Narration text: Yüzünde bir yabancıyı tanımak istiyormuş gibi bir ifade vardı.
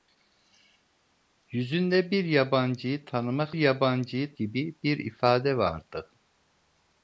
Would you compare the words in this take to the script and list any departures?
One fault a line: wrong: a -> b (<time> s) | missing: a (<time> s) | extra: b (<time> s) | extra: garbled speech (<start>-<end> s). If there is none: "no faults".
wrong: istiyormuş -> yabancıyı (3.5 s)